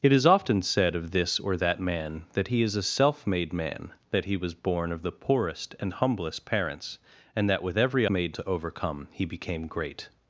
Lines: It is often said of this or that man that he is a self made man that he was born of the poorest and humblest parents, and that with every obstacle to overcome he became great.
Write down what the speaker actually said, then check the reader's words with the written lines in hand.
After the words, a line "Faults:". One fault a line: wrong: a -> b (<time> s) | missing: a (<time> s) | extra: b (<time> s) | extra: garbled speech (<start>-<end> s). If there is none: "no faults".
It is often said of this or that man that he is a self made man that he was born of the poorest and humblest parents, and that with every made to overcome he became great.
Faults:
wrong: obstacle -> made (8.1 s)